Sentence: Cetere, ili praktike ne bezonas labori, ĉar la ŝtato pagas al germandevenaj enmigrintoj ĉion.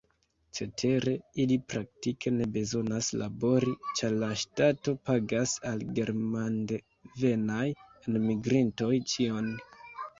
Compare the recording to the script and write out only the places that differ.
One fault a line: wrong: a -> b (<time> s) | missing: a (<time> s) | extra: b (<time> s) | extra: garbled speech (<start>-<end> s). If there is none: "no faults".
no faults